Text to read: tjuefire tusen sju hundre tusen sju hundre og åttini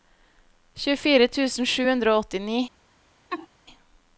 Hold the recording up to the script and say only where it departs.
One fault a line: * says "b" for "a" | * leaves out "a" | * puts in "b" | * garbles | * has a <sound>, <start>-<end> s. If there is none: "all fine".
* leaves out "tusen sju hundre"
* has a laugh, 3.3-3.5 s